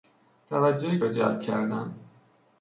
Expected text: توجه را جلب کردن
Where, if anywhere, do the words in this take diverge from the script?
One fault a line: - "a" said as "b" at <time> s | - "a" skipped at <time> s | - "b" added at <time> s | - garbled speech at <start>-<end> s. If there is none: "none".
none